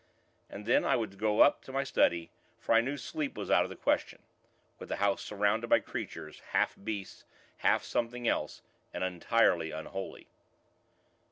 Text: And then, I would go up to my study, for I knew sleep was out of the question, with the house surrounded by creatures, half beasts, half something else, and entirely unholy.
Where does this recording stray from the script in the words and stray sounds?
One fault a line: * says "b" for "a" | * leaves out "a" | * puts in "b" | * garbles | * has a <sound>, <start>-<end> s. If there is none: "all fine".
all fine